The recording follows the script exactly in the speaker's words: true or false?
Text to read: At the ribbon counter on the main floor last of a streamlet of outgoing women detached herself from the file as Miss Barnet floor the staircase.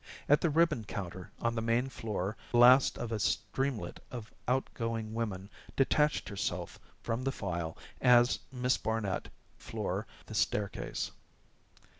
true